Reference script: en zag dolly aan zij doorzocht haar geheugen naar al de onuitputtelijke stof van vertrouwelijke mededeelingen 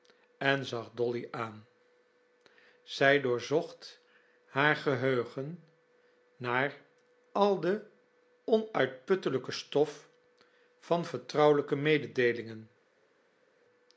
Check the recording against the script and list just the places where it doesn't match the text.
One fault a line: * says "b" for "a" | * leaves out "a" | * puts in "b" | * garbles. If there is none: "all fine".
all fine